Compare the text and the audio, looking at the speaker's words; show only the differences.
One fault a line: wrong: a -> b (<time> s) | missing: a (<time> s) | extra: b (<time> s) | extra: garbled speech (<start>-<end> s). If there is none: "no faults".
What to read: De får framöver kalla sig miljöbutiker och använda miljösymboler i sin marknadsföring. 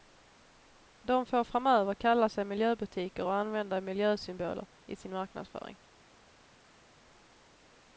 no faults